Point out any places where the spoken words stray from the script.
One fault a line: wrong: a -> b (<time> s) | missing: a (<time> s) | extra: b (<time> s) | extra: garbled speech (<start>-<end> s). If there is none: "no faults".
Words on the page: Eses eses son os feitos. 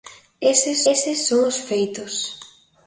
no faults